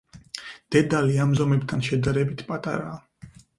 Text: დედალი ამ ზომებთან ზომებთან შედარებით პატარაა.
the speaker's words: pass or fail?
fail